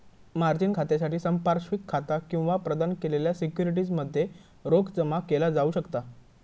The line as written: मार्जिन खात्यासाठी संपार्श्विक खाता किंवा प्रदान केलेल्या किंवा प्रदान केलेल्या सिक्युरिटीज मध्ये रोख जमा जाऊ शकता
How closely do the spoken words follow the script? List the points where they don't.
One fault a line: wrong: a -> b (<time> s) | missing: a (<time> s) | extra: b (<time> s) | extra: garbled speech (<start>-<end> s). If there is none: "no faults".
missing: किंवा प्रदान केलेल्या (3.3 s)
extra: केला (5.3 s)